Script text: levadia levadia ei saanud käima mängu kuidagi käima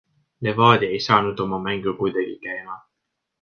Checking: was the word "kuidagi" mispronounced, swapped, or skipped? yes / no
no